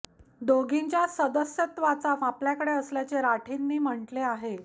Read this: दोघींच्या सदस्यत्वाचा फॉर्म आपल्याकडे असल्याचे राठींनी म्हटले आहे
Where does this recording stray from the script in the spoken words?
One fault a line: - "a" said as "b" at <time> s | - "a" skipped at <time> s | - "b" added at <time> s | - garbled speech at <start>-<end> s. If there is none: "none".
- "फॉर्म" skipped at 2.1 s